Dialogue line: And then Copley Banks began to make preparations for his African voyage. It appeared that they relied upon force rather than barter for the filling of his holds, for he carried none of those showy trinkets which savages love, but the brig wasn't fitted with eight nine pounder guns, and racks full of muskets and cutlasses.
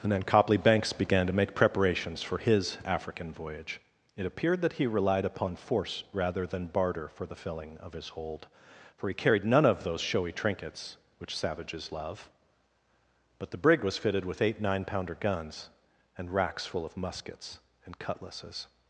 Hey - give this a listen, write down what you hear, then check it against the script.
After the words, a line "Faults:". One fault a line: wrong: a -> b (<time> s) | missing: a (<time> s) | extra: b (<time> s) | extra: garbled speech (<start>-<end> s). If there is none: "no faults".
And then Copley Banks began to make preparations for his African voyage. It appeared that he relied upon force rather than barter for the filling of his hold, for he carried none of those showy trinkets which savages love, but the brig was fitted with eight nine pounder guns, and racks full of muskets and cutlasses.
Faults:
wrong: they -> he (4.7 s)
wrong: holds -> hold (8.1 s)
wrong: wasn't -> was (13.8 s)